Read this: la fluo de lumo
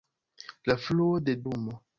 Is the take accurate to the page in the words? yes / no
yes